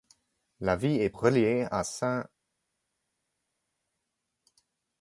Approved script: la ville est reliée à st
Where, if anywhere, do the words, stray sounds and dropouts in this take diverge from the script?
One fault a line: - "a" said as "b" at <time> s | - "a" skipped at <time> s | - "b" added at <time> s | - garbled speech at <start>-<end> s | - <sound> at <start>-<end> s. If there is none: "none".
none